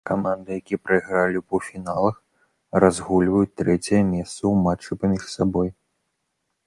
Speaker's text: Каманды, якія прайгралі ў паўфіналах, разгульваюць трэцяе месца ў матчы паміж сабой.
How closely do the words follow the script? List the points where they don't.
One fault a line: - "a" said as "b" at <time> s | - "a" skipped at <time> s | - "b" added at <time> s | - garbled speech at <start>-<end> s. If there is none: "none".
none